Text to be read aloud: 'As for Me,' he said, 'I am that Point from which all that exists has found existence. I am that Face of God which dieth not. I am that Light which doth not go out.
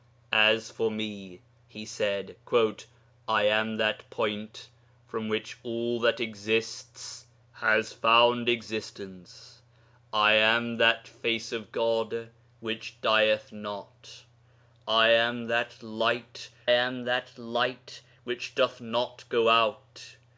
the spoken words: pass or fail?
fail